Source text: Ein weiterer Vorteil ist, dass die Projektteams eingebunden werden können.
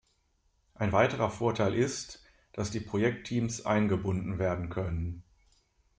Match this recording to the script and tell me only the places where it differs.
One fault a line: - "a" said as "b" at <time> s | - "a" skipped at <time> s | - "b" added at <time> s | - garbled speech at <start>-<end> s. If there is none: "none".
none